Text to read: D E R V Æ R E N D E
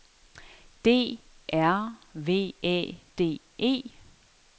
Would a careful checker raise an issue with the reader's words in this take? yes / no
yes